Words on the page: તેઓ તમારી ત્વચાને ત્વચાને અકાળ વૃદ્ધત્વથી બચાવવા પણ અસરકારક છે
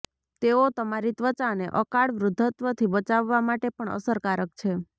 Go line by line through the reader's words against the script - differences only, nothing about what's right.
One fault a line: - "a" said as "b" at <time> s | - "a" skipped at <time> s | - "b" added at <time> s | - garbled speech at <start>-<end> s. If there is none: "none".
- "ત્વચાને" skipped at 1.7 s
- "માટે" added at 3.5 s